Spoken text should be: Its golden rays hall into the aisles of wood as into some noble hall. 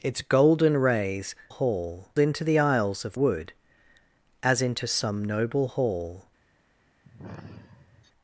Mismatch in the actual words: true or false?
false